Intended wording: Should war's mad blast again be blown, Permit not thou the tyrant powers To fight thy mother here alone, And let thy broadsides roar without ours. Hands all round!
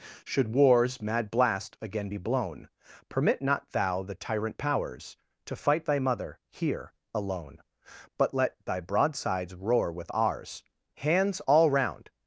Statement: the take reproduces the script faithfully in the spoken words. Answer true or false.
false